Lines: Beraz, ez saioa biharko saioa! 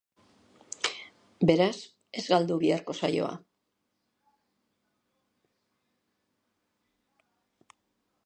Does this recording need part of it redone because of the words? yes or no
yes